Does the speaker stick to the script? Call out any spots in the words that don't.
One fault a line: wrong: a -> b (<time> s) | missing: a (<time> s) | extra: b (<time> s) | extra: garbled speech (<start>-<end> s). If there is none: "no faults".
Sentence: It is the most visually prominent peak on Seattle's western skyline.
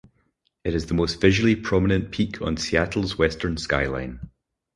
no faults